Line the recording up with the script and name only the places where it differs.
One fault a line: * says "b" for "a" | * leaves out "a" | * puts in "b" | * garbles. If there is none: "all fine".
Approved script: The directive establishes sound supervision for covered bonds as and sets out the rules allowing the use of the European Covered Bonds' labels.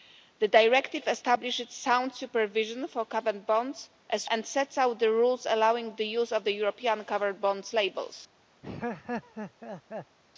all fine